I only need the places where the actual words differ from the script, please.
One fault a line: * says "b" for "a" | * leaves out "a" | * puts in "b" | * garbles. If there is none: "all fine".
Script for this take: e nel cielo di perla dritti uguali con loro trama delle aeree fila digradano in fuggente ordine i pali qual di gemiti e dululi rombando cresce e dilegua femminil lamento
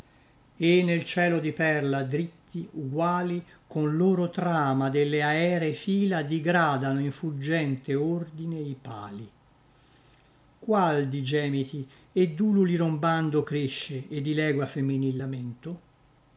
all fine